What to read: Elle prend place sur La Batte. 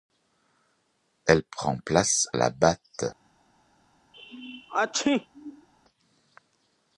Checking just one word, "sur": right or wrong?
wrong